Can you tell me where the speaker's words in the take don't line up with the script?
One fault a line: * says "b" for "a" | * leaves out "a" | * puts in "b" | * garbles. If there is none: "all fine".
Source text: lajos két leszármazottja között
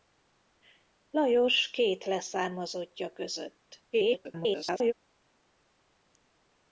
* garbles